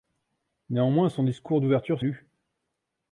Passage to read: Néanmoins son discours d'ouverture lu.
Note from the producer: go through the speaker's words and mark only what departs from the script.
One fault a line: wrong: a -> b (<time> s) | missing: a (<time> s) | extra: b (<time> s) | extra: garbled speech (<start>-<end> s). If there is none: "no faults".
no faults